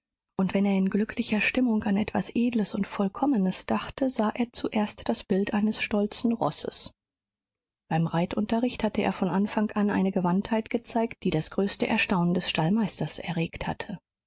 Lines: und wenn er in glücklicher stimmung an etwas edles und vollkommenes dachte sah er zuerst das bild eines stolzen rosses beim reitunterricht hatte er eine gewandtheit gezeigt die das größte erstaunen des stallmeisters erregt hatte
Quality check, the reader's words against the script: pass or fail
fail